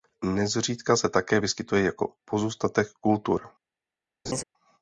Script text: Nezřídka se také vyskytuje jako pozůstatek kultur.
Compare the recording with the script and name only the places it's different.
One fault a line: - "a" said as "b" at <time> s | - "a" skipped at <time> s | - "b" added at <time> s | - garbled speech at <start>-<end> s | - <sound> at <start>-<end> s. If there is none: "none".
- laugh at 4.3-4.4 s